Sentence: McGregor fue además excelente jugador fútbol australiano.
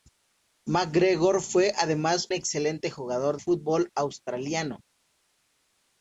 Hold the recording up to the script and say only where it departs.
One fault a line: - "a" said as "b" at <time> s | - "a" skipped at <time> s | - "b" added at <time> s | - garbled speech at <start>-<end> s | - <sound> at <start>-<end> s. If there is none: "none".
none